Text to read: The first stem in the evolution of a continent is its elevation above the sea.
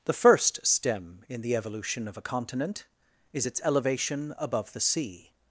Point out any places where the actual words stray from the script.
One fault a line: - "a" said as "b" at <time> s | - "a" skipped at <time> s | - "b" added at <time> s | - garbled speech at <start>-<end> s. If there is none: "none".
none